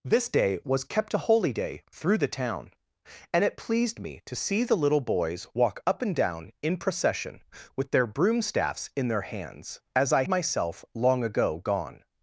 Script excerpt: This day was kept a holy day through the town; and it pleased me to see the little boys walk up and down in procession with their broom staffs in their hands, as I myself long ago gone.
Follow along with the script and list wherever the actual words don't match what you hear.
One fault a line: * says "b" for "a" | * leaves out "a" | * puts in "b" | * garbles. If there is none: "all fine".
all fine